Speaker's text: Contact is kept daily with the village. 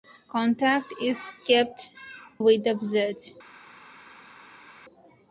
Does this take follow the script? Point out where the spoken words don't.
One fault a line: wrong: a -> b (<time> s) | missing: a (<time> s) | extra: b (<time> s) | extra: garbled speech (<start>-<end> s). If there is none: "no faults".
missing: daily (1.9 s)